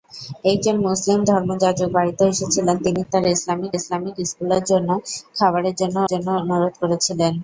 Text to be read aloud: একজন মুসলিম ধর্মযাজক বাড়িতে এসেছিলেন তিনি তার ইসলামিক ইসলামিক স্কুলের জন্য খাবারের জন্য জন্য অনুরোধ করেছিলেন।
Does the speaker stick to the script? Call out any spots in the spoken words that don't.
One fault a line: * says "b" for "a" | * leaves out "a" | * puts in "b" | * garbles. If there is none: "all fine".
all fine